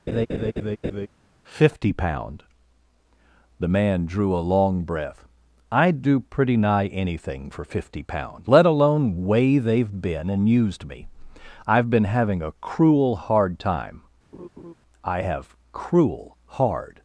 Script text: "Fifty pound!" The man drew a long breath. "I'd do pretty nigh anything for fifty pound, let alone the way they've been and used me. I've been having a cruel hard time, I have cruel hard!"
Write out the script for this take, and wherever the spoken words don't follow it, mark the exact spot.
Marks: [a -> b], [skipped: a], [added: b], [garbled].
"Fifty pound!" The man drew a long breath. "I'd do pretty nigh anything for fifty pound, let alone [skipped: the] way they've been and used me. I've been having a cruel hard time, I have cruel hard!"